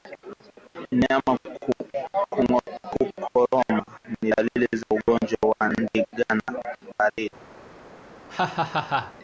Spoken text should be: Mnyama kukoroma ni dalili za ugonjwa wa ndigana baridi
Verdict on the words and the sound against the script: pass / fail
fail